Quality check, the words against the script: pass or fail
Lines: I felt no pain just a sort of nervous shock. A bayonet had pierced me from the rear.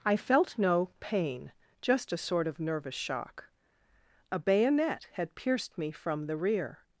pass